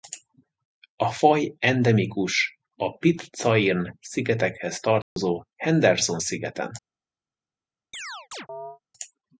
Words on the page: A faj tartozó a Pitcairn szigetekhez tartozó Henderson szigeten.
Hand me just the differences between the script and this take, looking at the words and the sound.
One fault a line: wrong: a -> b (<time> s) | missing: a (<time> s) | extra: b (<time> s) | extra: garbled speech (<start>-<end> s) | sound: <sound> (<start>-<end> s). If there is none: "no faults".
wrong: tartozó -> endemikus (1.6 s)
sound: dropout (5.0-5.2 s)
sound: chirp (7.9-8.8 s)